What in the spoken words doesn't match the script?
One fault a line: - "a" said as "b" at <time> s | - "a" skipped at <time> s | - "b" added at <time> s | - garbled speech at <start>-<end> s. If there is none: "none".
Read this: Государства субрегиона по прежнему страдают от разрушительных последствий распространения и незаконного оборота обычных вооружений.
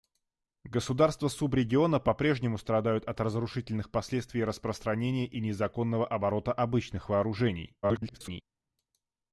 - garbled speech at 7.8-8.4 s